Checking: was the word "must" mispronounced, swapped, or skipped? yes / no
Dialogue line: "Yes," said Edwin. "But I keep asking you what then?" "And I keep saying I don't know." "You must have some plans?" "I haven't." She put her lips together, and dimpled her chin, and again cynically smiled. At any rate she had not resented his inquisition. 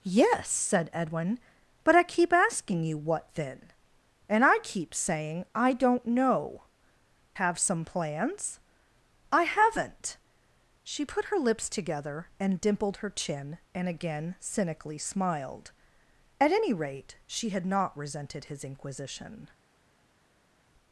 yes